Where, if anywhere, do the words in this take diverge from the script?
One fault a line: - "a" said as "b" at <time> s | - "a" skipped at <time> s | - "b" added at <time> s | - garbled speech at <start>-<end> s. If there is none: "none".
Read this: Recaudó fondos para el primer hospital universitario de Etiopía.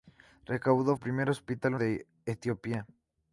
- "fondos para" skipped at 1.0 s
- "universitario" skipped at 1.7 s